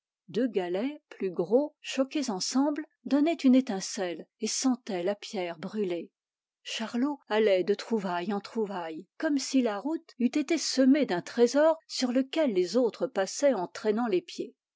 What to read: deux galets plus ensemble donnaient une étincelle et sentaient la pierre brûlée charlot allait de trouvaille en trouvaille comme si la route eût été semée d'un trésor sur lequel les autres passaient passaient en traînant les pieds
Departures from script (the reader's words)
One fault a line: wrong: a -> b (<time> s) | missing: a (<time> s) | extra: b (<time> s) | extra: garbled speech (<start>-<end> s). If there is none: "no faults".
extra: gros choqués (1.3 s)
missing: passaient (13.5 s)